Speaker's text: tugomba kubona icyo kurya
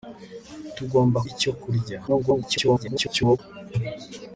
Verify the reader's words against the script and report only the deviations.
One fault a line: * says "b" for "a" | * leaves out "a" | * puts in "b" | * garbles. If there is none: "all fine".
* leaves out "kubona"
* garbles